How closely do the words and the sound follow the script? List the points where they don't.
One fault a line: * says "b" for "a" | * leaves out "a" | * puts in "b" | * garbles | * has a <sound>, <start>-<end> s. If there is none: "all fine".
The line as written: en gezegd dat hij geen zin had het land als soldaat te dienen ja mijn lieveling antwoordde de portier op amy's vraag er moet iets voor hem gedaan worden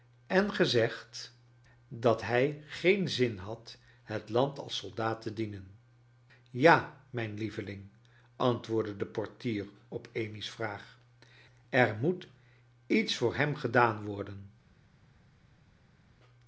all fine